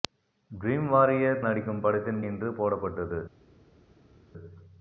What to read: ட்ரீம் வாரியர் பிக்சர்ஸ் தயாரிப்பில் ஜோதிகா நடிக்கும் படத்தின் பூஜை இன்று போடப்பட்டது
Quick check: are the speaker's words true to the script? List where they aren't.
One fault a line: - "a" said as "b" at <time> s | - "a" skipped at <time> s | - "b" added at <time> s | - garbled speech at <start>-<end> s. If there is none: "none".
- "பிக்சர்ஸ் தயாரிப்பில் ஜோதிகா" skipped at 1.4 s
- "பூஜை" skipped at 2.2 s